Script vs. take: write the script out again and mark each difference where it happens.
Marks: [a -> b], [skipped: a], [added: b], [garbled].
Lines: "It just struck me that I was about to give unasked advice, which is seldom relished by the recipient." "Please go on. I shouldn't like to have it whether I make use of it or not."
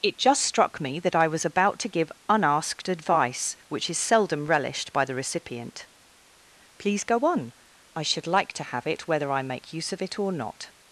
"It just struck me that I was about to give unasked advice, which is seldom relished by the recipient." "Please go on. I [shouldn't -> should] like to have it whether I make use of it or not."